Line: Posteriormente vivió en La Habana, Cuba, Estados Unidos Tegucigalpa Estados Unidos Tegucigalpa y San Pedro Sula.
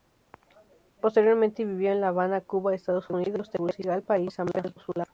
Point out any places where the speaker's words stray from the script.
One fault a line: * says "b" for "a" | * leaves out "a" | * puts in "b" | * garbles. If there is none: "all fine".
* leaves out "Estados Unidos Tegucigalpa"